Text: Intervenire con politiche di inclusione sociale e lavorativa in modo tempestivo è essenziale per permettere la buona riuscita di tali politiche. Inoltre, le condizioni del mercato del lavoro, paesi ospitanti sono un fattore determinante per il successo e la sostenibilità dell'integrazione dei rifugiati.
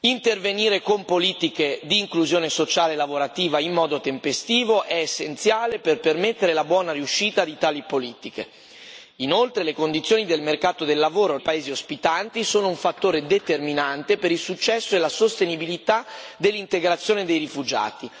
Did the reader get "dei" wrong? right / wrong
right